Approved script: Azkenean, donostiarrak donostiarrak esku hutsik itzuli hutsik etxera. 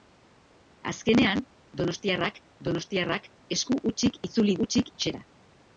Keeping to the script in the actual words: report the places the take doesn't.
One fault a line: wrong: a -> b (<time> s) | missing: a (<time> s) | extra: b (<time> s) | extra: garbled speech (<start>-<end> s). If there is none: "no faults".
no faults